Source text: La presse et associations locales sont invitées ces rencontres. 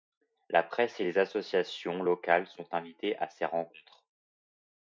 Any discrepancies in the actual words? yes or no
yes